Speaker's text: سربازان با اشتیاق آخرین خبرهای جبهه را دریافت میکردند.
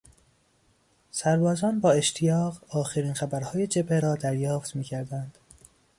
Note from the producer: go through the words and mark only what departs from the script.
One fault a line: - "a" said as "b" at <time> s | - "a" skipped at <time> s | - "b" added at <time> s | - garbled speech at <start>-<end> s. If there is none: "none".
none